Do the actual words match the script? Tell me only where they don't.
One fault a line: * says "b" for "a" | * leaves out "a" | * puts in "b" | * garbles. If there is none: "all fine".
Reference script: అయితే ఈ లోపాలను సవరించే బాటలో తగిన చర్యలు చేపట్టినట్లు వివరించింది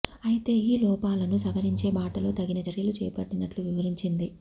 all fine